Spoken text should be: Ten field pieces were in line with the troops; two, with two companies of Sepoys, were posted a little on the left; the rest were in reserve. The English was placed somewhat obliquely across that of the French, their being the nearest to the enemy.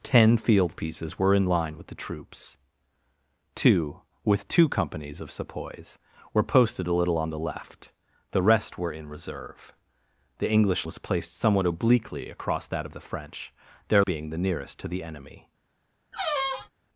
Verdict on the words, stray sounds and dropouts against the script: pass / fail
fail